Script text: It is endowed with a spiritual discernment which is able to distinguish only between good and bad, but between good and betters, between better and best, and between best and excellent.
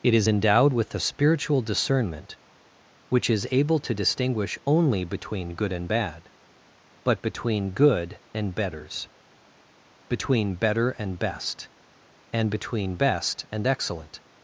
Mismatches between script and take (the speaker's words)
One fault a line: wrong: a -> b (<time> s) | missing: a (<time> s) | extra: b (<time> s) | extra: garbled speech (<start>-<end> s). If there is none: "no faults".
no faults